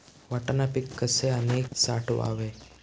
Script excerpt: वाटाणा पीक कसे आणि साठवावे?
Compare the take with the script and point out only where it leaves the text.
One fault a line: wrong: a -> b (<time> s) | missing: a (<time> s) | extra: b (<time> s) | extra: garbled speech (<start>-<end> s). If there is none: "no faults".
no faults